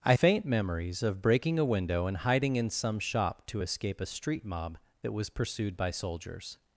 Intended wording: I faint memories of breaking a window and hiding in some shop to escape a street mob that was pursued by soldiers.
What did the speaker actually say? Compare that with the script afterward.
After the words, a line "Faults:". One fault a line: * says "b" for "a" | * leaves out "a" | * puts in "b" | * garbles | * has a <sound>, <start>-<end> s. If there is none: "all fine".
I faint memories of breaking a window and hiding in some shop to escape a street mob that was pursued by soldiers.
Faults:
all fine